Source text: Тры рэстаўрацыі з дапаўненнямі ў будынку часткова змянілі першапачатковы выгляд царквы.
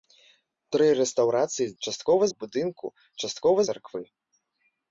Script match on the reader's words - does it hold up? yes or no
no